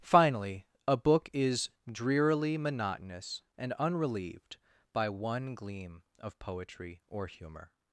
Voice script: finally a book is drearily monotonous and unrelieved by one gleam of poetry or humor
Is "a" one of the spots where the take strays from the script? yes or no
no